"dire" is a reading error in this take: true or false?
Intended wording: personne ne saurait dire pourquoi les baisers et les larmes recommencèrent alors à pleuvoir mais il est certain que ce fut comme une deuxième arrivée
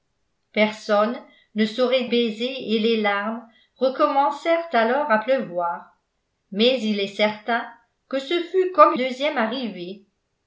true